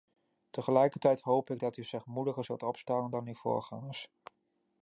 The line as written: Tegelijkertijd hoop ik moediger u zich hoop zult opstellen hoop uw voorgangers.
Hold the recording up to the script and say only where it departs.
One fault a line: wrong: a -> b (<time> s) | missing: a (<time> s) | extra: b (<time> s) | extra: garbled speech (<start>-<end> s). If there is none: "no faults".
wrong: moediger -> dat (1.6 s)
wrong: hoop -> moediger (2.0 s)
wrong: hoop -> dan (3.1 s)